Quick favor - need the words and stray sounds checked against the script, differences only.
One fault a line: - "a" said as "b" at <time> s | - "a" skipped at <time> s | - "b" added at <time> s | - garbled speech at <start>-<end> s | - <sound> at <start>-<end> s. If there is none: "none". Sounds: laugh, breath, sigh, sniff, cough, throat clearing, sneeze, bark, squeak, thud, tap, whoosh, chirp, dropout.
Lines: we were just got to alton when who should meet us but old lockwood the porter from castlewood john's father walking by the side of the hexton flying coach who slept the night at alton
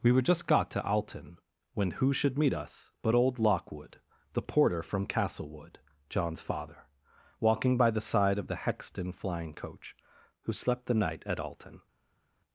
none